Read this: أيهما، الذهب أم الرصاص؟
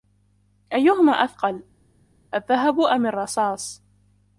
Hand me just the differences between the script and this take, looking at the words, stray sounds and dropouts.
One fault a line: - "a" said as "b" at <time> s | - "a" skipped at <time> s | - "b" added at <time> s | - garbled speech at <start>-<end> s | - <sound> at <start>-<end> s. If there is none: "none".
- "أثقل" added at 1.1 s